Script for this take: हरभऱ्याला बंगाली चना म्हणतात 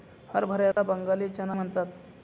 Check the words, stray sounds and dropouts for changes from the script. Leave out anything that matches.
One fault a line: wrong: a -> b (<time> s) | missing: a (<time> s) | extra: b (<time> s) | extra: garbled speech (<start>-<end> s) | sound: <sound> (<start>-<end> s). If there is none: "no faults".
sound: dropout (0.7-0.8 s)